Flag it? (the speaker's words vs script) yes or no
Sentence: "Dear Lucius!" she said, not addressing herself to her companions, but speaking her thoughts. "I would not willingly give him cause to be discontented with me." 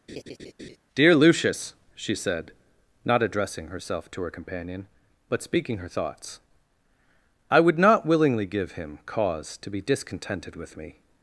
yes